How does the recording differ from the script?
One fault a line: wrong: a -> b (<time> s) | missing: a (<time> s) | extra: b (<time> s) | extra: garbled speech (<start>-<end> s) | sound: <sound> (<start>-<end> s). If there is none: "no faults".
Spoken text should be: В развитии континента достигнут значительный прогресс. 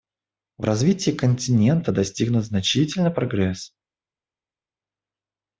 no faults